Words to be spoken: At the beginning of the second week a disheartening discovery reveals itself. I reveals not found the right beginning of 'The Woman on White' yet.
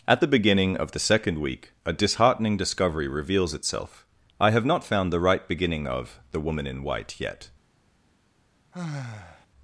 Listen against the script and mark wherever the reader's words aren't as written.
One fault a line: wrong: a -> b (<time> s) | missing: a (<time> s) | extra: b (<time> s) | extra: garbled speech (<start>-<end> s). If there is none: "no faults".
wrong: reveals -> have (4.5 s)
wrong: on -> in (6.7 s)